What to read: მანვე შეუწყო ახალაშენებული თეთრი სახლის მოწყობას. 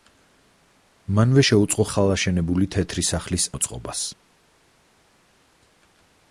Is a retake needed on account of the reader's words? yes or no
no